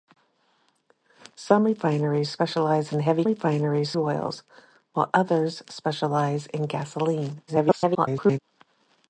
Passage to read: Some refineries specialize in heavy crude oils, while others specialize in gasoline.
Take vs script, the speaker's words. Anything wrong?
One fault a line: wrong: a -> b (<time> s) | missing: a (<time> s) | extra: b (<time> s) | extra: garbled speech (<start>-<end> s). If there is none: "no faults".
wrong: crude -> refineries (3.3 s)
extra: garbled speech (7.5-8.4 s)